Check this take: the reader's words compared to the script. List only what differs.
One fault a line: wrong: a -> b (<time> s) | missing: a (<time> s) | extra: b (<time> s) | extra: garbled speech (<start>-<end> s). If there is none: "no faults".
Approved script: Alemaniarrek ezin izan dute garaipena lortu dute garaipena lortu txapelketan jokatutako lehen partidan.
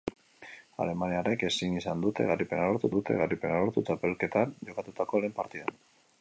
no faults